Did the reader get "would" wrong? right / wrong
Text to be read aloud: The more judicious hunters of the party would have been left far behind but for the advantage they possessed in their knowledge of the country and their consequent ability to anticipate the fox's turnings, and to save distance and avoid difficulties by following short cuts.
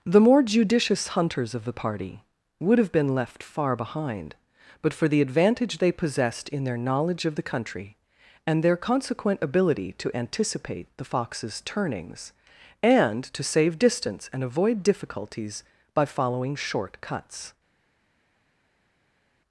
right